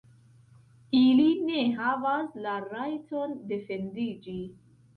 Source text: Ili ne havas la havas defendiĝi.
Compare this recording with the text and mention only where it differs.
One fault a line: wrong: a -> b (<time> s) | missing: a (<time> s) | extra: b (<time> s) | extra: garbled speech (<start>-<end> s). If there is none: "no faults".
wrong: havas -> rajton (2.7 s)